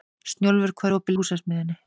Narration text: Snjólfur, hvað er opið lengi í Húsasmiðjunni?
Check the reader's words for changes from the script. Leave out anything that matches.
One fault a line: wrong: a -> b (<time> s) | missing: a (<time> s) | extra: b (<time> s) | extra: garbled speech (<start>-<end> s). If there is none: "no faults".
missing: lengi (1.2 s)